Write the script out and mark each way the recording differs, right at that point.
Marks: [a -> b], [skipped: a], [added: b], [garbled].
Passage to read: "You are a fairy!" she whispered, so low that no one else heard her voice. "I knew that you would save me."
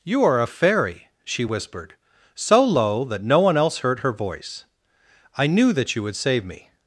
"You are a fairy!" she whispered, so low that no one else heard her voice. "I knew that you would save me."